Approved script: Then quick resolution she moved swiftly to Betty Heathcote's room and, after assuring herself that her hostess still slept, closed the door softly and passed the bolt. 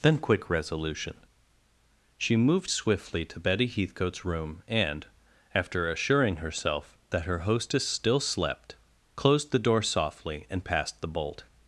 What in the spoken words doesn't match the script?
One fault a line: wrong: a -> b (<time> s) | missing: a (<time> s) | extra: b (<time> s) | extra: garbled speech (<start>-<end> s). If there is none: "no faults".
no faults